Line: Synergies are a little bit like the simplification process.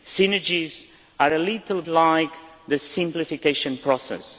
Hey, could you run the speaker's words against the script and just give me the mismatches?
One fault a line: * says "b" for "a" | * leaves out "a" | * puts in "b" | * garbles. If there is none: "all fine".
* leaves out "bit"